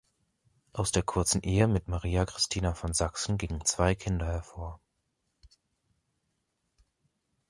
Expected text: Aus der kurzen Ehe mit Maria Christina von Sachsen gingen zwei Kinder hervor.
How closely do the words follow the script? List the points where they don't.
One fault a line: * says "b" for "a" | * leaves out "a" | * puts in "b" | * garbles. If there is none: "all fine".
all fine